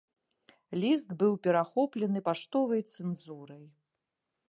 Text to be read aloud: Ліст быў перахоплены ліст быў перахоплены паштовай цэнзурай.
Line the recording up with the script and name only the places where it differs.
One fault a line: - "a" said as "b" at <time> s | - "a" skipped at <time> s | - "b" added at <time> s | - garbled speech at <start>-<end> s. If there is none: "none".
- "ліст быў перахоплены" skipped at 2.2 s